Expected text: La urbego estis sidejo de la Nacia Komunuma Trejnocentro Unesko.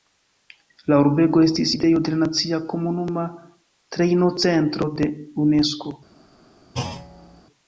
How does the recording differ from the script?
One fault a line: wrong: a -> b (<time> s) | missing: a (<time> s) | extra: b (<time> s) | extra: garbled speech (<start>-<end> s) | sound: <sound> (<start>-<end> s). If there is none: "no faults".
extra: de (5.0 s)
sound: thud (6.7-7.4 s)